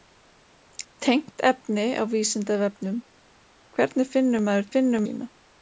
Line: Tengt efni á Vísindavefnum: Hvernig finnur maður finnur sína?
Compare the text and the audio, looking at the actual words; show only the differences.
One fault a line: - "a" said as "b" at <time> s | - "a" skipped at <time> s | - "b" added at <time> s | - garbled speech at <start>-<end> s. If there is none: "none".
none